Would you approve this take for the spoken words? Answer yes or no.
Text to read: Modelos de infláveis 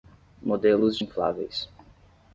yes